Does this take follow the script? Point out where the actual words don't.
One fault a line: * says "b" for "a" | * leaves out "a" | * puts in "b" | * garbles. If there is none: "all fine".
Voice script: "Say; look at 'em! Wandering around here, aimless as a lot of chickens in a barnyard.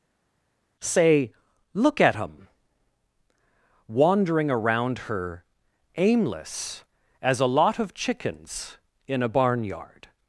* says "her" for "here"